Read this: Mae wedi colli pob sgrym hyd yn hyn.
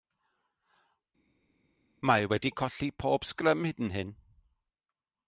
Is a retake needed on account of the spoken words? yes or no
no